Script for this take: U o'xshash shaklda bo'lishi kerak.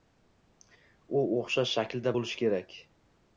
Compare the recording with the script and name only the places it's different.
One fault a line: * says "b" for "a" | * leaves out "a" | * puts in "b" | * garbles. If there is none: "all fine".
all fine